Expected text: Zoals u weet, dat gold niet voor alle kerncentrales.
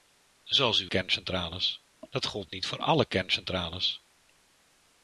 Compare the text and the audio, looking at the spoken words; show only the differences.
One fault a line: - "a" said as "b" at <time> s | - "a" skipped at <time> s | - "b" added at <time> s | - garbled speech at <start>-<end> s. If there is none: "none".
- "weet" said as "kerncentrales" at 0.8 s